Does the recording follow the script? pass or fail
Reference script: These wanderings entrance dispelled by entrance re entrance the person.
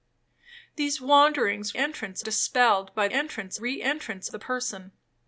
pass